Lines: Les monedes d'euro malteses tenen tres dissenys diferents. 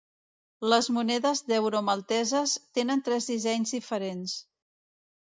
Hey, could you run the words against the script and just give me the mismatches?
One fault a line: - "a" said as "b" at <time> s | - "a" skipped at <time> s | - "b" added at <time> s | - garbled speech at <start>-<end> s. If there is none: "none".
none